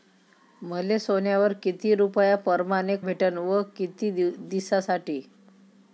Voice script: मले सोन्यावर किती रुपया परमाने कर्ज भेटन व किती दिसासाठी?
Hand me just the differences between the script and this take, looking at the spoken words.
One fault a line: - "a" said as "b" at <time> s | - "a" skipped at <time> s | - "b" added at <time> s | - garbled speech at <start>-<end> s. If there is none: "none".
- "कर्ज" skipped at 3.0 s